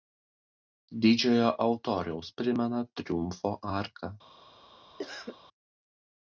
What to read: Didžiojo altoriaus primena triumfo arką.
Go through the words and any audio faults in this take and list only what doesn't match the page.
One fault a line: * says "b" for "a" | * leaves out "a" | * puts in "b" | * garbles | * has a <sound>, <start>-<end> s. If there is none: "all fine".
* has a cough, 5.0-5.4 s